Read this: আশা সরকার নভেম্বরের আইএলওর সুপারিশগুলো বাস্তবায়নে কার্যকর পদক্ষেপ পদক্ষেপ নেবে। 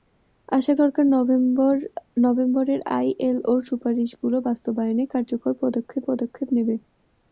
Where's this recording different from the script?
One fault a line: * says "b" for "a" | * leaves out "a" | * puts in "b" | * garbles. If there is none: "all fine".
all fine